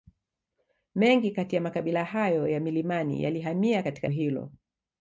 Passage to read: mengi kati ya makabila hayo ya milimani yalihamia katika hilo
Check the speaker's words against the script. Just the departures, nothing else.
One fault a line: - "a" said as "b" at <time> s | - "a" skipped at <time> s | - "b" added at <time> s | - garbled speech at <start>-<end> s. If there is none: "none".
none